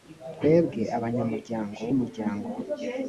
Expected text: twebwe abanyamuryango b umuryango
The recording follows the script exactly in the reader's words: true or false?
true